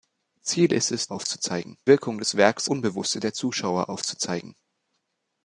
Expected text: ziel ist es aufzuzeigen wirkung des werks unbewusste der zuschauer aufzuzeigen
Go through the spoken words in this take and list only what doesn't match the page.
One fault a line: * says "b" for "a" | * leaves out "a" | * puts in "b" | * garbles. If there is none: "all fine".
all fine